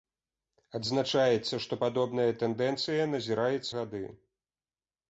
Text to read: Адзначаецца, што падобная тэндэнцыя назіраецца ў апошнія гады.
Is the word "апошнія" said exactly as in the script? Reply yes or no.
no